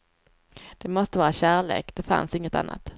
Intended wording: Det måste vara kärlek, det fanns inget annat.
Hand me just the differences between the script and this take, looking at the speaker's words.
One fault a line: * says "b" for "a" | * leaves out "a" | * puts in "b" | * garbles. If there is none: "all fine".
all fine